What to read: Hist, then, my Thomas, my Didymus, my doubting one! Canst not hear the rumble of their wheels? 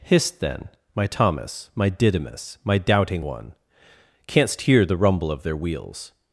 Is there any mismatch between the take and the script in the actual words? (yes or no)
yes